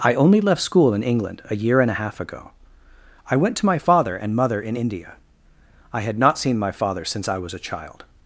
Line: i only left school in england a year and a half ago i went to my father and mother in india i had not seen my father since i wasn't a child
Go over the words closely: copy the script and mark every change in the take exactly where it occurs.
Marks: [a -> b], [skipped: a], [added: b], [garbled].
i only left school in england a year and a half ago i went to my father and mother in india i had not seen my father since i [wasn't -> was] a child